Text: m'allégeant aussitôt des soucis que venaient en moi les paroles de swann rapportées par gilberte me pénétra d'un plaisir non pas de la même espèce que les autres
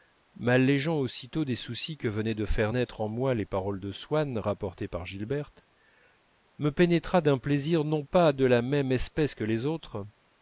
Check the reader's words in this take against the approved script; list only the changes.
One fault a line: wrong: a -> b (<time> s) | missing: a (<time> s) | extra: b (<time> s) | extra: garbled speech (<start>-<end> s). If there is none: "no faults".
extra: de faire naître (2.3 s)